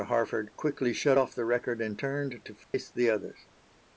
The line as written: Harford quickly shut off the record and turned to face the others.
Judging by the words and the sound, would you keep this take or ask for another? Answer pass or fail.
fail